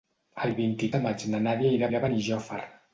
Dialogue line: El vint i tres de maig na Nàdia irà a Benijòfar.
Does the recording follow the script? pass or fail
fail